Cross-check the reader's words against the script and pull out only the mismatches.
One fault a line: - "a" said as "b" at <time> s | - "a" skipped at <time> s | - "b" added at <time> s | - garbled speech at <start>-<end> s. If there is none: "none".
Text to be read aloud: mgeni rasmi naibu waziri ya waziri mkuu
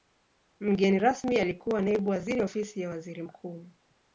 - "alikuwa" added at 1.4 s
- "ofisi" added at 2.4 s